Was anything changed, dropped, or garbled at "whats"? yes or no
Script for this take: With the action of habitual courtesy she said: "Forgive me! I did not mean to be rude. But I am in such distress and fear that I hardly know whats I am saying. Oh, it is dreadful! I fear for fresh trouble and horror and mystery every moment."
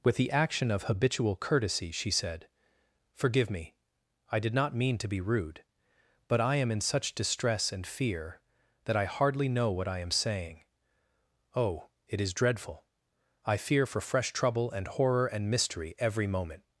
yes